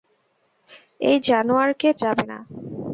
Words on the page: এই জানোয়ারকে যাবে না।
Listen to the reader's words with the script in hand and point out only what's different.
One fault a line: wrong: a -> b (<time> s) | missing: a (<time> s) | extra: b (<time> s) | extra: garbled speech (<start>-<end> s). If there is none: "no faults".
no faults